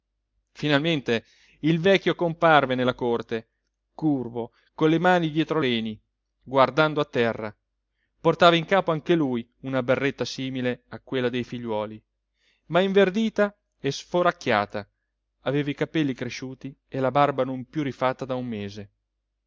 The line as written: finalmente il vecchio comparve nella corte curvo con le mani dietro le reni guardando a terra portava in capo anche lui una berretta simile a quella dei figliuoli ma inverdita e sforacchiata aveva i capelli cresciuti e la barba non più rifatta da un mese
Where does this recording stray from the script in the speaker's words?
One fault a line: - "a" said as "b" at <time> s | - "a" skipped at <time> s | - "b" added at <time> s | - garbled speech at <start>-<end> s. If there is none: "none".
- "le" skipped at 5.6 s